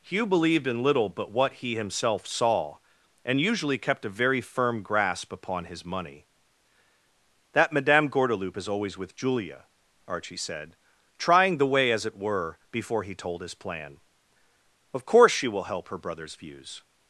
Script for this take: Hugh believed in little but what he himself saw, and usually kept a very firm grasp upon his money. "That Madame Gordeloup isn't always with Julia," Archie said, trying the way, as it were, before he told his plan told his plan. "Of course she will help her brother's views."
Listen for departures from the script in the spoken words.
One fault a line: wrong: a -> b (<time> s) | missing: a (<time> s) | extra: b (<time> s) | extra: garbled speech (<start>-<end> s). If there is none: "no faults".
wrong: isn't -> is (8.6 s)
missing: told his plan (14.0 s)